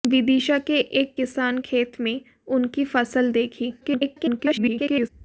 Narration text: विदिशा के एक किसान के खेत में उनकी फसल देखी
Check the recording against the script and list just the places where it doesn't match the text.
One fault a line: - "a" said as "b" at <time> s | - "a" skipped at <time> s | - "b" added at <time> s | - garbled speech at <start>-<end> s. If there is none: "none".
- "के" skipped at 1.6 s
- garbled speech at 3.8-5.1 s